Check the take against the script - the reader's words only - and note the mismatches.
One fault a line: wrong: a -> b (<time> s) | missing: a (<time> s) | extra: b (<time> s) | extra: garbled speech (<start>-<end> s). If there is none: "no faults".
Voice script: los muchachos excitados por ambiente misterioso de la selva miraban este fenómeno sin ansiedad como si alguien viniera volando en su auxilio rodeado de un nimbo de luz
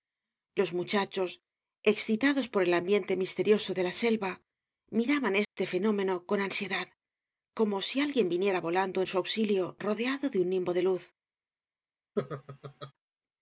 extra: el (2.6 s)
wrong: sin -> con (6.2 s)